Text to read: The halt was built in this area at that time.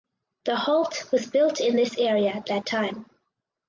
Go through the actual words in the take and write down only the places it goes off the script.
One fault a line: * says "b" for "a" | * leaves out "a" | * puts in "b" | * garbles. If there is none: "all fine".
all fine